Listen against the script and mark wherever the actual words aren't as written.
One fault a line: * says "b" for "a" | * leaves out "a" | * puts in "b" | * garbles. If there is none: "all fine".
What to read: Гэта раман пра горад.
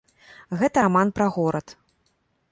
all fine